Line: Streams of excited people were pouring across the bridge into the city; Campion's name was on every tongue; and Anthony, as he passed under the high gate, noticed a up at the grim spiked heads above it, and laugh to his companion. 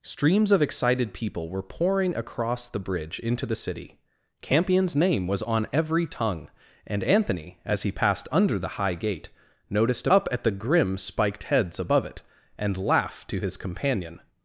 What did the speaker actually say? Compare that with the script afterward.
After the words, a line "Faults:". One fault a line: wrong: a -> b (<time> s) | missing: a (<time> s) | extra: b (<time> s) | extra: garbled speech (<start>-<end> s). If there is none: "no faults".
Streams of excited people were pouring across the bridge into the city; Campion's name was on every tongue; and Anthony, as he passed under the high gate, noticed a up at the grim spiked heads above it, and laugh to his companion.
Faults:
no faults